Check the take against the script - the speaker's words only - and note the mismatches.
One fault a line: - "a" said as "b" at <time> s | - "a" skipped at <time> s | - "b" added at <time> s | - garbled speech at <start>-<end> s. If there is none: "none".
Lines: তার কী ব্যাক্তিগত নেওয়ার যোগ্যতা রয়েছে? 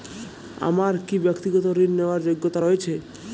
- "তার" said as "আমার" at 0.6 s
- "ঋণ" added at 1.8 s